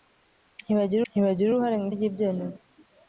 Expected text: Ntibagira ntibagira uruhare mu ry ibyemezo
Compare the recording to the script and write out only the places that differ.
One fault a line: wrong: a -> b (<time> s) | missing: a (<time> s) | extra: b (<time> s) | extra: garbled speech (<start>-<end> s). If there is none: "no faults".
no faults